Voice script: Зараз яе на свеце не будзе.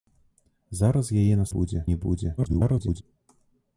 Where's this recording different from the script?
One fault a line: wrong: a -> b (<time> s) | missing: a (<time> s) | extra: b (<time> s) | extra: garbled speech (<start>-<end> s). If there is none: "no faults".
wrong: свеце -> будзе (1.5 s)
extra: garbled speech (2.4-3.0 s)